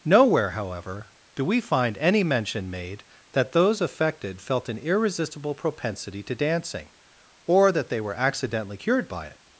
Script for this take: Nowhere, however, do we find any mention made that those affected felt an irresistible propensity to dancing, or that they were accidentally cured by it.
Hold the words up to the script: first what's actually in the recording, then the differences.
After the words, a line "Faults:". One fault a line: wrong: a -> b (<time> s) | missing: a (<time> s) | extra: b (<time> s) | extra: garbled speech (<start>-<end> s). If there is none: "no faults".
Nowhere, however, do we find any mention made that those affected felt an irresistible propensity to dancing, or that they were accidentally cured by it.
Faults:
no faults